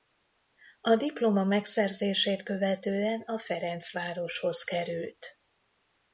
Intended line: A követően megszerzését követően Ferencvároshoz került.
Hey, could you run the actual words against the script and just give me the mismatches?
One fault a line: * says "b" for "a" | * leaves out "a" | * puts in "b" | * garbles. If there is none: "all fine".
* says "diploma" for "követően"
* puts in "a"